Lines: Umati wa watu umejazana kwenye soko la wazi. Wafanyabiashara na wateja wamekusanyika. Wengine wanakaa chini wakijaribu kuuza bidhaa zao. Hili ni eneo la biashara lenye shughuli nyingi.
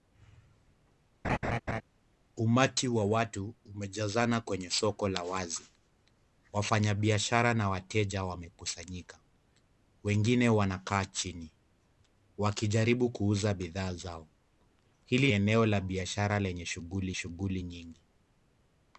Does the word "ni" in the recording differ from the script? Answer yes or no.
yes